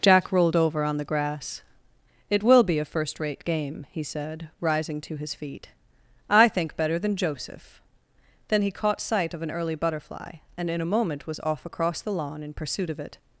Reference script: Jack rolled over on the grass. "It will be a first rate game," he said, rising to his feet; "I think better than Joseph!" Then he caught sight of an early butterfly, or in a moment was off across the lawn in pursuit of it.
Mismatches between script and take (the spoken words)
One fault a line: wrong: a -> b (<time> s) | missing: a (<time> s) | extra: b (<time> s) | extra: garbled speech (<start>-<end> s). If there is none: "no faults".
wrong: or -> and (10.6 s)